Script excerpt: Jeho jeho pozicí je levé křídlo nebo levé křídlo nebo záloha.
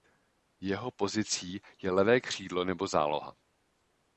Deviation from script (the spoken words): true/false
true